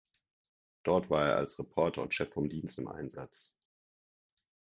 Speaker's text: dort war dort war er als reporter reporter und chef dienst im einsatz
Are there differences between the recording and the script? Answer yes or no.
yes